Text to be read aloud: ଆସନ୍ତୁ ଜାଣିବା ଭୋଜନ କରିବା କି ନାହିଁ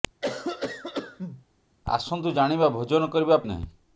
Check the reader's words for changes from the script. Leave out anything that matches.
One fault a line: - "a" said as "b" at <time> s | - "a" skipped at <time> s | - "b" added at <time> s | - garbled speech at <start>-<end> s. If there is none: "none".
none